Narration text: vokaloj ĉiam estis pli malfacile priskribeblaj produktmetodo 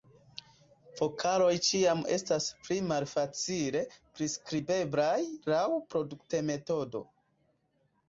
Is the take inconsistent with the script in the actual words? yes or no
yes